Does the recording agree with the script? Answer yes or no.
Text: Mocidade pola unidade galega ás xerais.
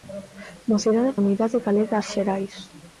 no